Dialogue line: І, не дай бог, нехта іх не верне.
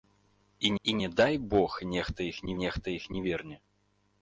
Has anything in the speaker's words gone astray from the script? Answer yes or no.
yes